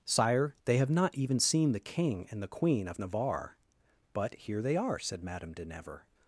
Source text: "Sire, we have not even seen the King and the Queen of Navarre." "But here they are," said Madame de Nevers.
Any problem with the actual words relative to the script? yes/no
yes